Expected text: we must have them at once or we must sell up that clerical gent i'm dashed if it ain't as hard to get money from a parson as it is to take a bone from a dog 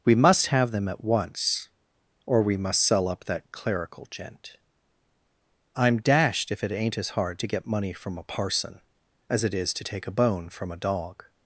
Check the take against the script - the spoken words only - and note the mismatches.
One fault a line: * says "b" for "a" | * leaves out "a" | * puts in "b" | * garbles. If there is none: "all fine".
all fine